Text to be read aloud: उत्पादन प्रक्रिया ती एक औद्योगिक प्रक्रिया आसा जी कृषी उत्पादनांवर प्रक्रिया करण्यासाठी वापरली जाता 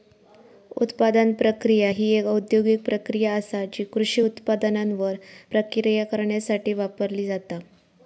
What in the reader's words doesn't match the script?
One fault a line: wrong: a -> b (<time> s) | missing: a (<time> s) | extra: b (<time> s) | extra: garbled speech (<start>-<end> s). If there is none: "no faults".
wrong: ती -> ही (1.9 s)